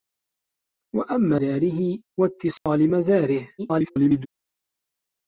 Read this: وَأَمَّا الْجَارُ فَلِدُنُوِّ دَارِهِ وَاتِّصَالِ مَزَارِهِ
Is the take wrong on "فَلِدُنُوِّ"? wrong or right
wrong